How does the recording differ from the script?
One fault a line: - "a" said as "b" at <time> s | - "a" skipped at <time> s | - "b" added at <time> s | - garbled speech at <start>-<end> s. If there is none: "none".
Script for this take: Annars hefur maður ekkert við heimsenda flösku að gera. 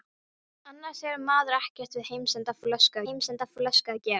- "heimsenda flösku" added at 3.1 s